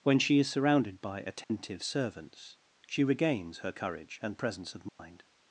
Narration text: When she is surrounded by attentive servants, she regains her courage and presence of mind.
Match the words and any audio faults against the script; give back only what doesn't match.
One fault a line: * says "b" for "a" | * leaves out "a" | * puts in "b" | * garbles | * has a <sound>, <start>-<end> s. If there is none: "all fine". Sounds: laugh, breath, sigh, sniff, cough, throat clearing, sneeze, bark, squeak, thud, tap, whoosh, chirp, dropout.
* has a dropout, 1.4-1.5 s
* has a dropout, 4.9-5.0 s